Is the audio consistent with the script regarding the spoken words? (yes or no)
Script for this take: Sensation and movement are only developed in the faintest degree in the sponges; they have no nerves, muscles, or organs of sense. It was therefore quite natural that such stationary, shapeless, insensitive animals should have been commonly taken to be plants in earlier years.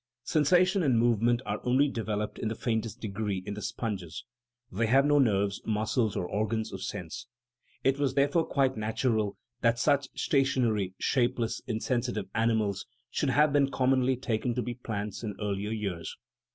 yes